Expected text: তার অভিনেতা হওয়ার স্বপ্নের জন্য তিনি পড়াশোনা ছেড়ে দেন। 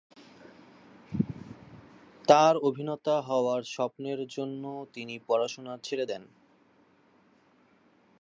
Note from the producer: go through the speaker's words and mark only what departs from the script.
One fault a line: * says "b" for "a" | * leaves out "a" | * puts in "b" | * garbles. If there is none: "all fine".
all fine